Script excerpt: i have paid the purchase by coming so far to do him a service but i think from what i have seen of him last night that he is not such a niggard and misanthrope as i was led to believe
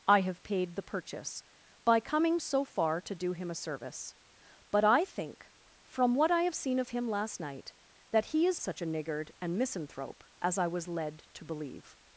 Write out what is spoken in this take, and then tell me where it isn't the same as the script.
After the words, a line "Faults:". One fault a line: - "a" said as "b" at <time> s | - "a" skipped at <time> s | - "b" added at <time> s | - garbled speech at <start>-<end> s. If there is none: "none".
i have paid the purchase by coming so far to do him a service but i think from what i have seen of him last night that he is such a niggard and misanthrope as i was led to believe
Faults:
- "not" skipped at 8.6 s